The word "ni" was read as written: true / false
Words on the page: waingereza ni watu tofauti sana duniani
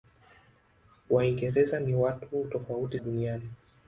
true